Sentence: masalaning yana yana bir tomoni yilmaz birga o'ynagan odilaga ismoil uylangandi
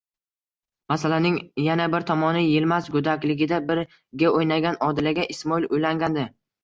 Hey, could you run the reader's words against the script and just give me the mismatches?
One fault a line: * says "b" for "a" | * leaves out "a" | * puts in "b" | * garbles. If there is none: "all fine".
* leaves out "yana"
* puts in "go'dakligida"